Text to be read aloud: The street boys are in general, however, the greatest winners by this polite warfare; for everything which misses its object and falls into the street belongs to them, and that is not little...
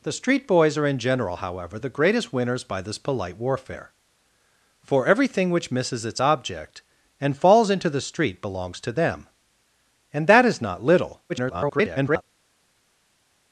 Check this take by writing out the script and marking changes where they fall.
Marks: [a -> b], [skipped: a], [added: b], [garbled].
The street boys are in general, however, the greatest winners by this polite warfare; for everything which misses its object and falls into the street belongs to them, and that is not little... [garbled]